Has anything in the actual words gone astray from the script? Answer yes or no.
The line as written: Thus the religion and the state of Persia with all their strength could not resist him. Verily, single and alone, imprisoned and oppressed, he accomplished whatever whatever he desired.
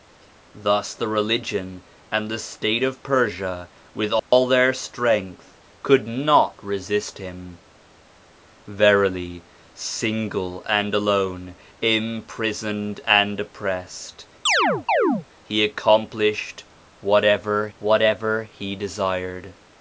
no